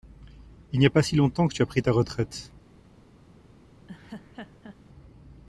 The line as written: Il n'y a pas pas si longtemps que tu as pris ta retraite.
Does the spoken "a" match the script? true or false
true